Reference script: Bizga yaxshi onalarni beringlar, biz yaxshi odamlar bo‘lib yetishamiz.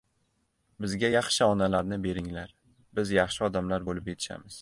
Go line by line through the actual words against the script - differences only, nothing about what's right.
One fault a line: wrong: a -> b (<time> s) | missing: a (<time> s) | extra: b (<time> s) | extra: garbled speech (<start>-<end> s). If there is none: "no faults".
no faults